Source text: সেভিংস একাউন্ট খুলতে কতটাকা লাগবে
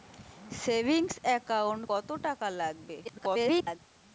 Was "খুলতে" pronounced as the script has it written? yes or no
no